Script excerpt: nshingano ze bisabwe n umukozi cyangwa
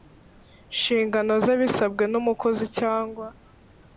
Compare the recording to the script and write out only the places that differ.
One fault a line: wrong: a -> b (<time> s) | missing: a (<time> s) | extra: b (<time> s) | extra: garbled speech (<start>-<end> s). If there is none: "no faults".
no faults